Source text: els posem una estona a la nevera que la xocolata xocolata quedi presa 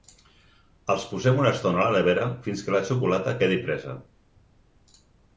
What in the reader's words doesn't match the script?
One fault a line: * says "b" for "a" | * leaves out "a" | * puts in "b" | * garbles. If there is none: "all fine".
* puts in "fins"
* leaves out "xocolata"